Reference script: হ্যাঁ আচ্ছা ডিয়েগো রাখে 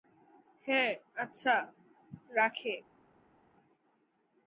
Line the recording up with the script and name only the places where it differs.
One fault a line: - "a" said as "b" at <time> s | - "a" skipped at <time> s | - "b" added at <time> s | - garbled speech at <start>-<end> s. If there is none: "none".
- "ডিয়েগো" skipped at 1.6 s